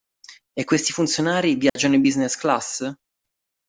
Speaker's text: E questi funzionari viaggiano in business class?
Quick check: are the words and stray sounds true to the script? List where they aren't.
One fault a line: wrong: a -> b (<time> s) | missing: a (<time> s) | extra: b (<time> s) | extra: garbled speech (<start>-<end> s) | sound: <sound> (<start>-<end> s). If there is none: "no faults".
sound: dropout (1.7-1.8 s)